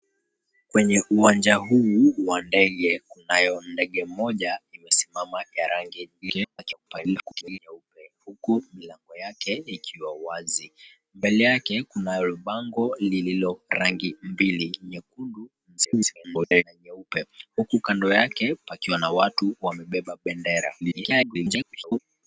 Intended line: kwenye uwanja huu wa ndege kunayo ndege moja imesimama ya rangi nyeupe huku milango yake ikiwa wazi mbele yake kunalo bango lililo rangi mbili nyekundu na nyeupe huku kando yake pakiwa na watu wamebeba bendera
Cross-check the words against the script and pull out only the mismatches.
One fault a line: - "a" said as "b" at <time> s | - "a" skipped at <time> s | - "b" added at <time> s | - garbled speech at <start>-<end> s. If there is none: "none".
- garbled speech at 6.2-7.6 s
- garbled speech at 15.8-16.6 s
- garbled speech at 20.8-22.0 s